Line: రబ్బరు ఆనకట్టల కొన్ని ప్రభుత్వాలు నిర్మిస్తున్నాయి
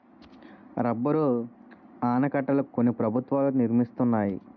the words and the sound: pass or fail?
pass